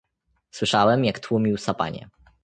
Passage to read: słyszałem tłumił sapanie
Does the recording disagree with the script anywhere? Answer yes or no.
yes